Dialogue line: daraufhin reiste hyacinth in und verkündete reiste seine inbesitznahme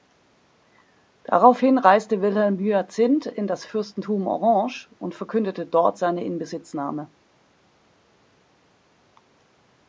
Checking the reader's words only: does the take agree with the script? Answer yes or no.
no